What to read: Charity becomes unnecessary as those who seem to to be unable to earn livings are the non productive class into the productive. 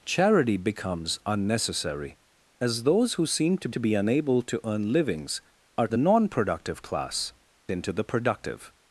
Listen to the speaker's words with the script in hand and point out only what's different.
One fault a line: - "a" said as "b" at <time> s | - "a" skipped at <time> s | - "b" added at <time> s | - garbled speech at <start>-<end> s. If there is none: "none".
none